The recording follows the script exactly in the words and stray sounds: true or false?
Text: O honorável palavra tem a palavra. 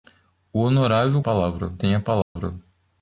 false